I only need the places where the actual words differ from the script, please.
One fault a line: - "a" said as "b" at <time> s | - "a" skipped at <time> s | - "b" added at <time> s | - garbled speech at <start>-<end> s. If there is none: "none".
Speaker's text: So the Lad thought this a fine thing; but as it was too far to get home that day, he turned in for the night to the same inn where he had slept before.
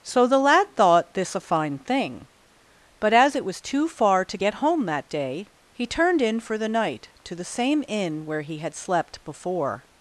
none